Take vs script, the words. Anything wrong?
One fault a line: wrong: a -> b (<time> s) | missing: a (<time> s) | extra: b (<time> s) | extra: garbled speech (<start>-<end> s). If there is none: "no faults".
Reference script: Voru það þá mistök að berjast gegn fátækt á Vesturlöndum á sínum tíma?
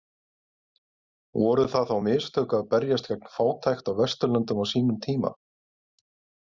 no faults